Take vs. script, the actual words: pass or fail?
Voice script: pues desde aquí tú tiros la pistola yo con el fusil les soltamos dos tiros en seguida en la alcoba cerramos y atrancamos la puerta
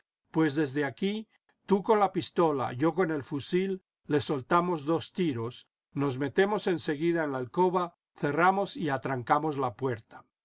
fail